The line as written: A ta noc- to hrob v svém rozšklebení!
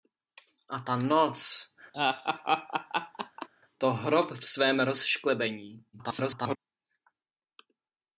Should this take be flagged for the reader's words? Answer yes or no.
yes